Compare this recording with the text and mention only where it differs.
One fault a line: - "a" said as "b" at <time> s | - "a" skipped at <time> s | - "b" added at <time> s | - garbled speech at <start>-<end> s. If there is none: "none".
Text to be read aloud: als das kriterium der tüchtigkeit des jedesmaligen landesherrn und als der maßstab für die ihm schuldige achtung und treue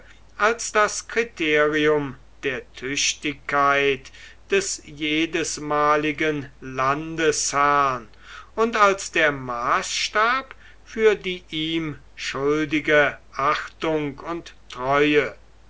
none